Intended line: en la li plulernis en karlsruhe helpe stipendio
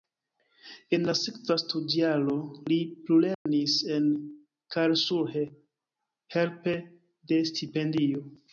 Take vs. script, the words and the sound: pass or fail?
fail